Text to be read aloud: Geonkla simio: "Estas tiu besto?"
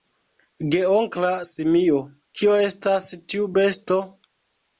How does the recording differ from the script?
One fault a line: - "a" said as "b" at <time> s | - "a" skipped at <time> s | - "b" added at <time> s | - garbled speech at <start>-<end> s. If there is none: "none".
- "Kio" added at 2.4 s